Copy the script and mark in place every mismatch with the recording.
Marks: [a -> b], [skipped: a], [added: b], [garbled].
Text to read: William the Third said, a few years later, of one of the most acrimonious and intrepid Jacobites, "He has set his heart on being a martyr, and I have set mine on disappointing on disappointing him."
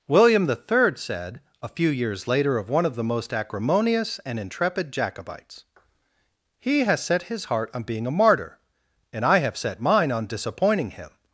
William the Third said, a few years later, of one of the most acrimonious and intrepid Jacobites, "He has set his heart on being a martyr, and I have set mine on disappointing [skipped: on disappointing] him."